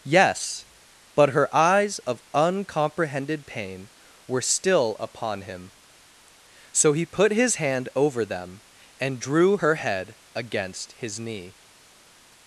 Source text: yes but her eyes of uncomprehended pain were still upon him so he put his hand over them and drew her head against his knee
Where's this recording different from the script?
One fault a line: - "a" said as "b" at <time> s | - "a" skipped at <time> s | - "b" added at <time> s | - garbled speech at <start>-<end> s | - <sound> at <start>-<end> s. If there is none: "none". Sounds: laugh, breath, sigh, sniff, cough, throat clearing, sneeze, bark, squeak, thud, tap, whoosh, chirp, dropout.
none